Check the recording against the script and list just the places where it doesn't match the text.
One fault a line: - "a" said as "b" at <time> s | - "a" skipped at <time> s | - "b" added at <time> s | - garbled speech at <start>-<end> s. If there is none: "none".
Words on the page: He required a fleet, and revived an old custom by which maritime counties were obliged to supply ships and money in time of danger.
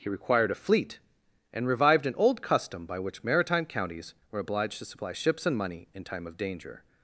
none